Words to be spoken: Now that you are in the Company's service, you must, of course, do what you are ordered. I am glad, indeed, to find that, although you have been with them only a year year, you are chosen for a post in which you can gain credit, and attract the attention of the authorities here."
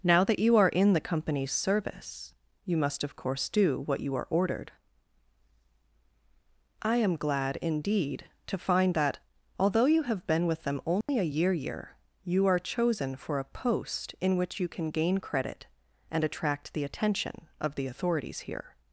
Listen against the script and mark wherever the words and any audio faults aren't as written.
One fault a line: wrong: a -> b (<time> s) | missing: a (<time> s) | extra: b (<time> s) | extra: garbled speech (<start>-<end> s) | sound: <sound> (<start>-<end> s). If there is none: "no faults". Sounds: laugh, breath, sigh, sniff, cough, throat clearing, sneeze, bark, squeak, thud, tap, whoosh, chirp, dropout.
sound: dropout (11.0-11.1 s)